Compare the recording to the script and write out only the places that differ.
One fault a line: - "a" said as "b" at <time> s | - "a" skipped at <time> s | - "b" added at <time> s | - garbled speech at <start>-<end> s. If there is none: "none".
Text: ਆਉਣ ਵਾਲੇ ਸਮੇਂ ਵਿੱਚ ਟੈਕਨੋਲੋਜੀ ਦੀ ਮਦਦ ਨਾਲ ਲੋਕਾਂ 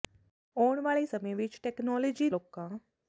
- "ਦੀ ਮਦਦ ਨਾਲ" skipped at 2.3 s